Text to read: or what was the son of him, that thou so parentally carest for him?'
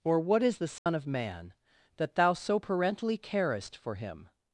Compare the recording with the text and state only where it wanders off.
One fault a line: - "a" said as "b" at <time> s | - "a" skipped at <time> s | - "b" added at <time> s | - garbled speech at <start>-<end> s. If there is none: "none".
- "was" said as "is" at 0.4 s
- "him" said as "man" at 1.1 s